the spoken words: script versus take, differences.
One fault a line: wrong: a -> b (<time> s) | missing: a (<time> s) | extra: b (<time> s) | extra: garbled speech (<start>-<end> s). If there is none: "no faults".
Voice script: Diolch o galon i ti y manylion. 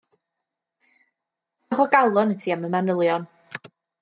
extra: am (2.6 s)